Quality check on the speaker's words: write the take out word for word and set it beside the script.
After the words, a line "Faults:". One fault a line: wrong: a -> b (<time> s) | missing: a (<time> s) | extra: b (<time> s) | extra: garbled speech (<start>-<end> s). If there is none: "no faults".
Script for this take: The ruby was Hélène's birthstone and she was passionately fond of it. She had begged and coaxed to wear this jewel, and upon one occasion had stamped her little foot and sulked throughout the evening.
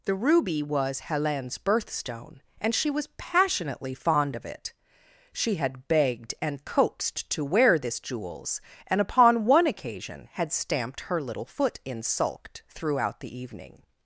The ruby was Hélène's birthstone and she was passionately fond of it. She had begged and coaxed to wear this jewels, and upon one occasion had stamped her little foot in sulked throughout the evening.
Faults:
wrong: jewel -> jewels (8.0 s)
wrong: and -> in (11.8 s)